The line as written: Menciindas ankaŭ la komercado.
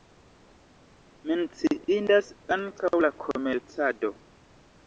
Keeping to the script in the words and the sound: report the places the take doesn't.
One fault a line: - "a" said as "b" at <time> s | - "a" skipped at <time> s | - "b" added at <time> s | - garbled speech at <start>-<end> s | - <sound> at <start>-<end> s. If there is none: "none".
none